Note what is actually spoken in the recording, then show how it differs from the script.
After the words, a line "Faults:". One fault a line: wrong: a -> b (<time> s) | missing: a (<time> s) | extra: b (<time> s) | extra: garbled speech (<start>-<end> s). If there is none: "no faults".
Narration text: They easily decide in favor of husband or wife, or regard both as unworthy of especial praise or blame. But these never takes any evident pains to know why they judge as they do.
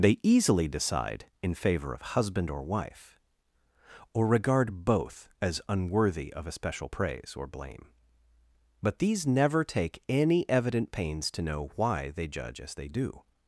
They easily decide in favor of husband or wife, or regard both as unworthy of especial praise or blame. But these never take any evident pains to know why they judge as they do.
Faults:
wrong: takes -> take (9.6 s)